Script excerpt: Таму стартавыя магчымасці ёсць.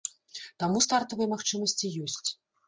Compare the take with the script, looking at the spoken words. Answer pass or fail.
pass